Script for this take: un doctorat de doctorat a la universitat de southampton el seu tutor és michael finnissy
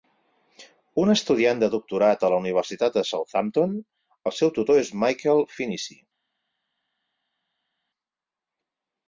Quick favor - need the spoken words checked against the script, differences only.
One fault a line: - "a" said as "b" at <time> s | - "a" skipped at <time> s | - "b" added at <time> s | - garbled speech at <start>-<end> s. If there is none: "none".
- "doctorat" said as "estudiant" at 1.1 s